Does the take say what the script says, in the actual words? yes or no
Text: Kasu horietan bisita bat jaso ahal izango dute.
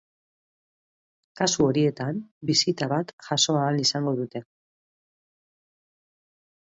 yes